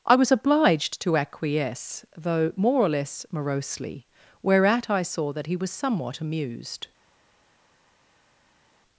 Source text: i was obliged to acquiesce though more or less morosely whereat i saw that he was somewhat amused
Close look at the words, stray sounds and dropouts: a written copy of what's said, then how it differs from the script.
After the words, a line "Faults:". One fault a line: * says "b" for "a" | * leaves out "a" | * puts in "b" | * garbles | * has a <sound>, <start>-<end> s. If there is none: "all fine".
i was obliged to acquiesce though more or less morosely whereat i saw that he was somewhat amused
Faults:
all fine